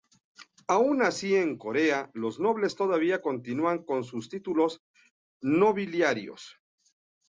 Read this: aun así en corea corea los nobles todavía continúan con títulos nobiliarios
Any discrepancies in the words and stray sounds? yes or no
yes